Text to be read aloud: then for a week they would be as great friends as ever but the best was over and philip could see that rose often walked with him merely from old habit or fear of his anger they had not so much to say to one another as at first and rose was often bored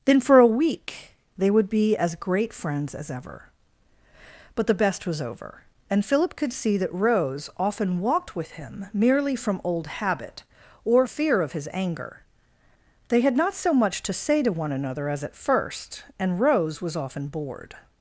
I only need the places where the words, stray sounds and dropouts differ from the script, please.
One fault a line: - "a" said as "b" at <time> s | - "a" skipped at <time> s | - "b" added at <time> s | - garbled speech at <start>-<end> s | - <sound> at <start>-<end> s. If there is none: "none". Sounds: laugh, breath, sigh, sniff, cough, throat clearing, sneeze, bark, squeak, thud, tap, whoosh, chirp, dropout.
none